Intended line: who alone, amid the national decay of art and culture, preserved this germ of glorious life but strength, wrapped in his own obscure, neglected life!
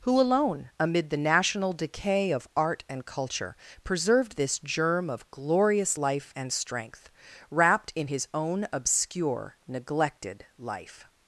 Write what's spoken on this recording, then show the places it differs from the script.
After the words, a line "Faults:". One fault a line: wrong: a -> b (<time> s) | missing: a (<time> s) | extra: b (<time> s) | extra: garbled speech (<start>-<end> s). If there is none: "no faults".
who alone, amid the national decay of art and culture, preserved this germ of glorious life and strength, wrapped in his own obscure, neglected life!
Faults:
wrong: but -> and (6.3 s)